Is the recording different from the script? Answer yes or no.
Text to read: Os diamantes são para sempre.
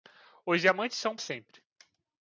yes